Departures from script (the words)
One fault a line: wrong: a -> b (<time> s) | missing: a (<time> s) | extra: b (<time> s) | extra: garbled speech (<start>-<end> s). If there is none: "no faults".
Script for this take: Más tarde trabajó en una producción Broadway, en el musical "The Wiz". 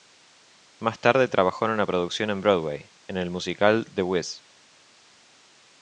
extra: en (2.3 s)